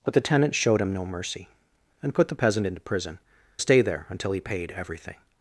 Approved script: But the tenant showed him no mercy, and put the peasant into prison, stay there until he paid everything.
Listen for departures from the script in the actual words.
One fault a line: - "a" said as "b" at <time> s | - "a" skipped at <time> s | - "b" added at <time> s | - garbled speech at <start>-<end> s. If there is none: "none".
none